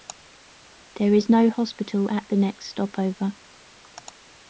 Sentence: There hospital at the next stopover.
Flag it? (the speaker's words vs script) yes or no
yes